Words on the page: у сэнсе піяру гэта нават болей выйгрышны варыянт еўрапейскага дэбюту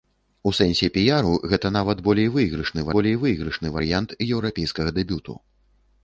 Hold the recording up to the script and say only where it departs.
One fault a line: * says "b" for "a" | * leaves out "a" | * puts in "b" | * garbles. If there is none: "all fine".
* puts in "болей выйгрышны"